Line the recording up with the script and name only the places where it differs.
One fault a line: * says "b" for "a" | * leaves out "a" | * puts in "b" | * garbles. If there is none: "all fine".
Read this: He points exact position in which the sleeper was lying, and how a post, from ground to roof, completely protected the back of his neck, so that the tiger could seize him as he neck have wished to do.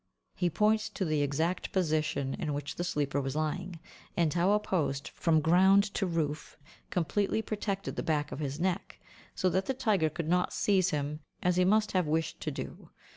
* puts in "to the"
* puts in "not"
* says "must" for "neck"